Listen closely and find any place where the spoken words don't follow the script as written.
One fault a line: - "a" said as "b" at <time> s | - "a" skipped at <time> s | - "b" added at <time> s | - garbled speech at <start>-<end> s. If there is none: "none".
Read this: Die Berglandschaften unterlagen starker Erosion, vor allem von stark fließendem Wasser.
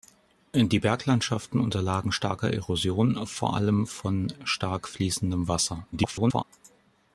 - garbled speech at 5.9-6.4 s